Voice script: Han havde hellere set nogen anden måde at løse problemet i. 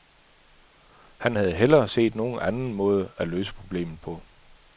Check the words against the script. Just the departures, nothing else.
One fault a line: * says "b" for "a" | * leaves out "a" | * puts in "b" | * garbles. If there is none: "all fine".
* says "på" for "i"